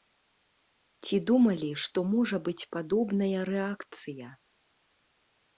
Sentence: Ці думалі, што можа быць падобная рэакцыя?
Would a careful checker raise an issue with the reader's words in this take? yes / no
no